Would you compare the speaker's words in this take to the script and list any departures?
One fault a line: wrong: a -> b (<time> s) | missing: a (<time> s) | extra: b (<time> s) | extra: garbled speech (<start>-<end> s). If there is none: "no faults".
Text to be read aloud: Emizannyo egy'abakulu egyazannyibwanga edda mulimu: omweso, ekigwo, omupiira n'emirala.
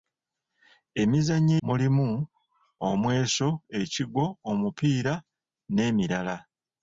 missing: egy'abakulu egyazannyibwanga edda (1.5 s)